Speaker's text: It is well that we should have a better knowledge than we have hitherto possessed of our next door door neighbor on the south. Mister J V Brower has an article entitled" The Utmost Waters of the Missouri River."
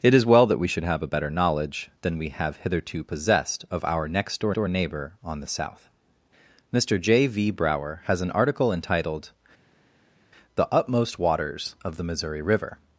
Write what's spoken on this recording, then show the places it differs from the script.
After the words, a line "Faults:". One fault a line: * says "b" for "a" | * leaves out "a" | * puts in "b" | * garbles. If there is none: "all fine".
It is well that we should have a better knowledge than we have hitherto possessed of our next door door neighbor on the south. Mister J V Brower has an article entitled" The Utmost Waters of the Missouri River."
Faults:
all fine